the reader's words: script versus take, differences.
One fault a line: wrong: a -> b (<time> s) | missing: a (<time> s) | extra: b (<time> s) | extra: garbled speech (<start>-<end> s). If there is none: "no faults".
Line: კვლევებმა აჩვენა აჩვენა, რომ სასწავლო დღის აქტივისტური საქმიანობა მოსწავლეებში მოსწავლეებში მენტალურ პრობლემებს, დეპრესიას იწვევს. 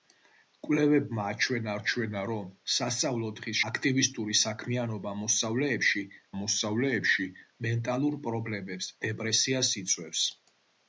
no faults